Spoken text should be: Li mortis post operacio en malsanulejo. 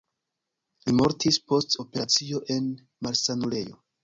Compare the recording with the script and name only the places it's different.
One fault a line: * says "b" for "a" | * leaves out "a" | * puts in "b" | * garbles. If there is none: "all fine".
all fine